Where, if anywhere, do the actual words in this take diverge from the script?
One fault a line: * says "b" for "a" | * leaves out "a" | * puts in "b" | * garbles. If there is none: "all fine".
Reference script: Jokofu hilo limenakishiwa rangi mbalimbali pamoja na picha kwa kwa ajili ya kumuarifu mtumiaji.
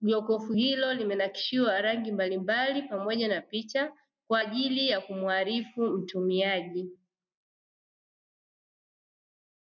* leaves out "kwa"